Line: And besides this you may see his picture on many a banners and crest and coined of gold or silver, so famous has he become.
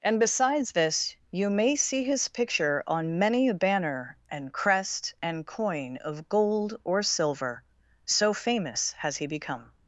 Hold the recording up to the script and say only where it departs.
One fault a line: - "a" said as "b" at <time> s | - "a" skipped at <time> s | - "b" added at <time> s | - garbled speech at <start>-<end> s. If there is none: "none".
- "banners" said as "banner" at 3.5 s
- "coined" said as "coin" at 5.4 s